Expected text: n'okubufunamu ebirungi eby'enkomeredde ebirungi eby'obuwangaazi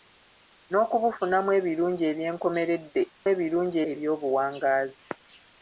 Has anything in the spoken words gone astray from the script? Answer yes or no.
no